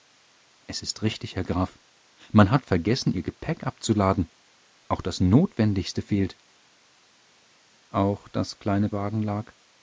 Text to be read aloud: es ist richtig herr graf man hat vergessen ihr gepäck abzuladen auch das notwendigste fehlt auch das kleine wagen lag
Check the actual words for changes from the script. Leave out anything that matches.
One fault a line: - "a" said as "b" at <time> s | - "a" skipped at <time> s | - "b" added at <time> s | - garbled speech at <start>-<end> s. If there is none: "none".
none